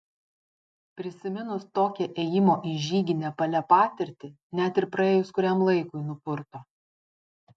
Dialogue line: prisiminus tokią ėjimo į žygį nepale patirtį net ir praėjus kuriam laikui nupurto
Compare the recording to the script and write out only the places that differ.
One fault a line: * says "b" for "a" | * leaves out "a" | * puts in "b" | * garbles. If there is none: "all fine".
all fine